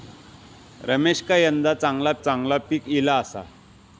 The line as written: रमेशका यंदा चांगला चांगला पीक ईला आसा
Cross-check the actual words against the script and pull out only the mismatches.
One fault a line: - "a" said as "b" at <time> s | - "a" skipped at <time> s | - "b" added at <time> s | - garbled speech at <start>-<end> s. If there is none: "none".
none